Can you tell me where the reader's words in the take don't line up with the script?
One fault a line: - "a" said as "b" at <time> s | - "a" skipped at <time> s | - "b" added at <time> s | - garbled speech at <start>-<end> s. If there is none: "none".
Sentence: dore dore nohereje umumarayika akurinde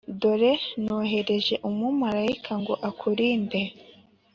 - "dore" skipped at 0.5 s
- "ngo" added at 2.6 s